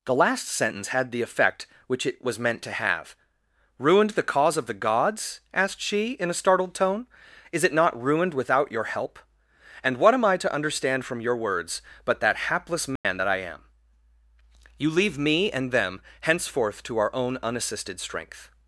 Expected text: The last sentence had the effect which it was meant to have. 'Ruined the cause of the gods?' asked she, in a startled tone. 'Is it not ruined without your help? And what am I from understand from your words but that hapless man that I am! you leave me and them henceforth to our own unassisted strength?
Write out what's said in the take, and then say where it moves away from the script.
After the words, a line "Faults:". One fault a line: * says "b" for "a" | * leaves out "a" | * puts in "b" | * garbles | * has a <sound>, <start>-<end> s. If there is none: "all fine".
The last sentence had the effect which it was meant to have. 'Ruined the cause of the gods?' asked she, in a startled tone. 'Is it not ruined without your help? And what am I to understand from your words but that hapless man that I am! you leave me and them henceforth to our own unassisted strength?
Faults:
* says "to" for "from"
* has a dropout, 13.0-13.0 s